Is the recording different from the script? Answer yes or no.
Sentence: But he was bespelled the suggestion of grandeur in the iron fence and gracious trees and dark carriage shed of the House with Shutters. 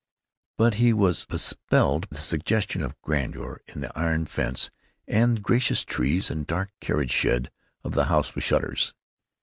no